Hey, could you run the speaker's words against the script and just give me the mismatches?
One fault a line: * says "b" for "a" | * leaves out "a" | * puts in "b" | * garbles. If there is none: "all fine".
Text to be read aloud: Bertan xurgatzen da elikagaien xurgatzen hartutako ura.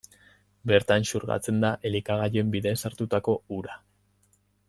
* says "bidez" for "xurgatzen"